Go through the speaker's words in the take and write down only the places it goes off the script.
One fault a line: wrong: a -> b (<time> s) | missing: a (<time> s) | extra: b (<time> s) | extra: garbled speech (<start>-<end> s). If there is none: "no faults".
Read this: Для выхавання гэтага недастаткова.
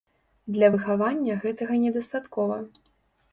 no faults